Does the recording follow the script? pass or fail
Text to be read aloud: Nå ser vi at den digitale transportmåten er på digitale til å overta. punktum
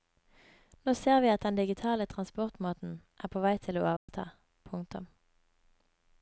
fail